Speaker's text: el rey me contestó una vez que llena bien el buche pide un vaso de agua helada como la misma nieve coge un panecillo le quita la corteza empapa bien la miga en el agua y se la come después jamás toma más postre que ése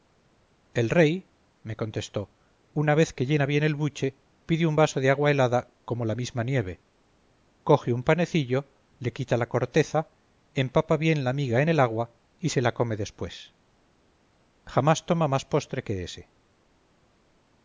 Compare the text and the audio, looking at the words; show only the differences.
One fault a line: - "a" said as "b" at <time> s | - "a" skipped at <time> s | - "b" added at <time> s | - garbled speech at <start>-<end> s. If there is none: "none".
none